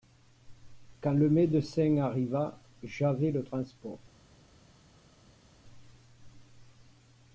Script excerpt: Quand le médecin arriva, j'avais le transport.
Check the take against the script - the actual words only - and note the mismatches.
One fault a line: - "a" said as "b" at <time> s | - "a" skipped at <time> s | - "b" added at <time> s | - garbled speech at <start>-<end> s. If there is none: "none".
none